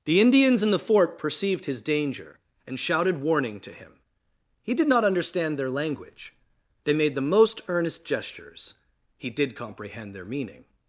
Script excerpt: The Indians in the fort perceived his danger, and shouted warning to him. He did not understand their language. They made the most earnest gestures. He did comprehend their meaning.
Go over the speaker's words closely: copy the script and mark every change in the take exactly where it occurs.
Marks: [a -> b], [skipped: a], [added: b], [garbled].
The Indians in the fort perceived his danger, and shouted warning to him. He did not understand their language. They made the most earnest gestures. He did comprehend their meaning.